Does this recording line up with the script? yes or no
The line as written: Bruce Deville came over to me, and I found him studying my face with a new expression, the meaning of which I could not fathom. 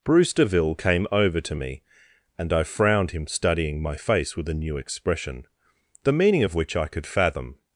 no